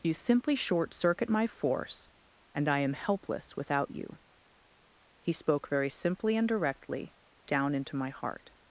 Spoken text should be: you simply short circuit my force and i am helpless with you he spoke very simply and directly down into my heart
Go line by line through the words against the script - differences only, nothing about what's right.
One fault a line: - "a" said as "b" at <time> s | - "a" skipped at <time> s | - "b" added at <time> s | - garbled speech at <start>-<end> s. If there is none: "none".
- "with" said as "without" at 3.5 s